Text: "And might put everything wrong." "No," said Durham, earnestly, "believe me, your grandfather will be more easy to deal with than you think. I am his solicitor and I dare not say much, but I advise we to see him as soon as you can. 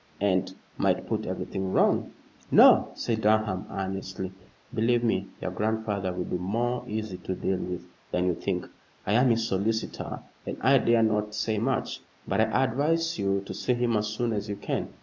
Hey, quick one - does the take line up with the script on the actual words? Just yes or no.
no